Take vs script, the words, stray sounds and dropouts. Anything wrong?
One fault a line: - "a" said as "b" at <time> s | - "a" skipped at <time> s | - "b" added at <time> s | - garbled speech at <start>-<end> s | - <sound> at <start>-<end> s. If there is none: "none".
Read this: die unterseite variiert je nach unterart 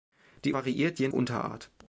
- "unterseite" skipped at 0.5 s
- "nach" skipped at 1.1 s